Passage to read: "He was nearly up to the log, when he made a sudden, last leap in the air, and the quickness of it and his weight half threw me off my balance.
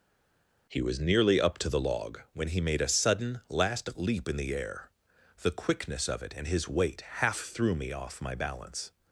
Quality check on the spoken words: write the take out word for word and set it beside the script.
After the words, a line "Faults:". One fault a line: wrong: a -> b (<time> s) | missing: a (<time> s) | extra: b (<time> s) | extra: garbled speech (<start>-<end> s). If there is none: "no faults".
"He was nearly up to the log, when he made a sudden, last leap in the air, the quickness of it and his weight half threw me off my balance.
Faults:
missing: and (4.9 s)